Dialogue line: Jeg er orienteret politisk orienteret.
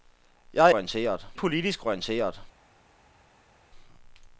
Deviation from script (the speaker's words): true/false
false